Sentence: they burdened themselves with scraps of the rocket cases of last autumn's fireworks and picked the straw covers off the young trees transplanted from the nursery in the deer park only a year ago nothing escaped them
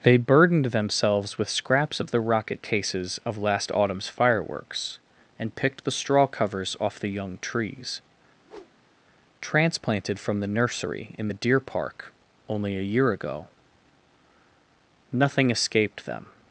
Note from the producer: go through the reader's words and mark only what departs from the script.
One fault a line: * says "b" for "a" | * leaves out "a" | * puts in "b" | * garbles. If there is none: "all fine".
all fine